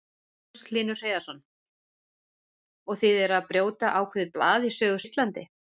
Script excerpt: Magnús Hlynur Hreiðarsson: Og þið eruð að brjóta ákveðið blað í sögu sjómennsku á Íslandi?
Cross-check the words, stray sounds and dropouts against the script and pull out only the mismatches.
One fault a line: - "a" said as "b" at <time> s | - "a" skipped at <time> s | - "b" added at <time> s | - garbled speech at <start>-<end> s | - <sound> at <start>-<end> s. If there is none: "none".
- "sjómennsku" skipped at 5.0 s